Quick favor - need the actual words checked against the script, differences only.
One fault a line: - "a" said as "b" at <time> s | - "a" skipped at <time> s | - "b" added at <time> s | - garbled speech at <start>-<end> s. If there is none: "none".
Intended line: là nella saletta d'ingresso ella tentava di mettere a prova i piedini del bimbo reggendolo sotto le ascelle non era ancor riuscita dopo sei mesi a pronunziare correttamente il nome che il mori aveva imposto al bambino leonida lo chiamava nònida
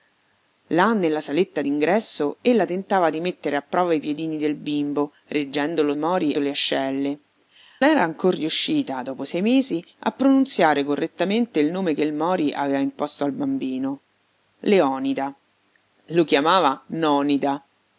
- "sotto" said as "mori" at 6.0 s
- "non" skipped at 7.2 s